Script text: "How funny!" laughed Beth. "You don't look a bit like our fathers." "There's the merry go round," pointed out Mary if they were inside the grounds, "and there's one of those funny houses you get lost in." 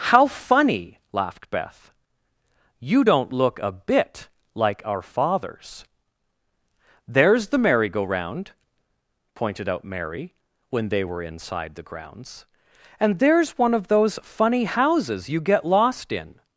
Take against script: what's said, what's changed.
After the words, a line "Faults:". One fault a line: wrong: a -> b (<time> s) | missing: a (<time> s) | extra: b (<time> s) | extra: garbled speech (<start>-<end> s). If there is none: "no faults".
"How funny!" laughed Beth. "You don't look a bit like our fathers." "There's the merry go round," pointed out Mary when they were inside the grounds, "and there's one of those funny houses you get lost in."
Faults:
wrong: if -> when (10.7 s)